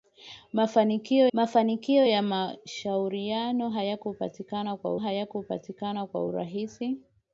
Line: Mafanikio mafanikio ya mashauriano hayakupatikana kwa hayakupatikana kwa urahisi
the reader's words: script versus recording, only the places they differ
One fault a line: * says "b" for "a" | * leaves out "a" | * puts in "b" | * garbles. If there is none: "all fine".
all fine